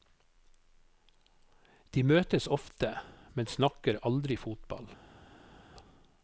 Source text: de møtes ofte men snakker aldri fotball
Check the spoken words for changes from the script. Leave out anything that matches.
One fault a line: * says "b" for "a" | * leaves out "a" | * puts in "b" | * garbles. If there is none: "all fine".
all fine